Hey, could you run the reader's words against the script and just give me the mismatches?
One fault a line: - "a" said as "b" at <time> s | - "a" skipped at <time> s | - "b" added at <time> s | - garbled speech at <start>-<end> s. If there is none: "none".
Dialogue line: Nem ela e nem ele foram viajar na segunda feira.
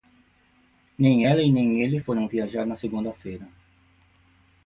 none